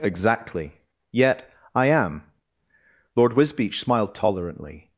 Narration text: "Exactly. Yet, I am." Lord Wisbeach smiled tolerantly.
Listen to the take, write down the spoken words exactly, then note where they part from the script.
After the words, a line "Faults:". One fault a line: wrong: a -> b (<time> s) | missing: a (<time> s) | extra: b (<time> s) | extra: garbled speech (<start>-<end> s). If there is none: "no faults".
"Exactly. Yet, I am." Lord Wisbeach smiled tolerantly.
Faults:
no faults